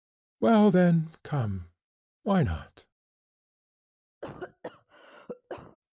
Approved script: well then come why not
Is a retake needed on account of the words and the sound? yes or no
yes